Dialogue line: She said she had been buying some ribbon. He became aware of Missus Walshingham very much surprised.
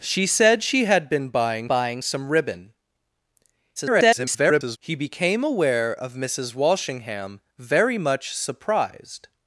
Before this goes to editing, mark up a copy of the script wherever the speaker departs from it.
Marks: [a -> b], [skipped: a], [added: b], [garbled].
She said she had been buying [added: buying] some ribbon. [garbled] He became aware of Missus Walshingham very much surprised.